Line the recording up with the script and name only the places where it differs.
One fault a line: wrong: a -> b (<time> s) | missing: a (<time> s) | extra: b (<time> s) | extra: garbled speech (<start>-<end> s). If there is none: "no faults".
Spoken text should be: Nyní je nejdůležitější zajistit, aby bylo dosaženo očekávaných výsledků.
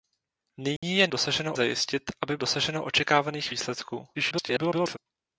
wrong: nejdůležitější -> dosaženo (1.1 s)
missing: bylo (2.4 s)
extra: garbled speech (4.1-5.0 s)